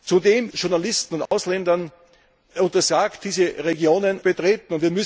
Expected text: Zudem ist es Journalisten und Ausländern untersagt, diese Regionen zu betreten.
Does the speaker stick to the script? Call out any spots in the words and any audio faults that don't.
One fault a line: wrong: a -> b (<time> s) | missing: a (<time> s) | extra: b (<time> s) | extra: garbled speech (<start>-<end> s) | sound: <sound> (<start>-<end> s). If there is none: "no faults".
missing: ist es (0.5 s)
sound: dropout (1.3-1.3 s)
missing: zu (4.2 s)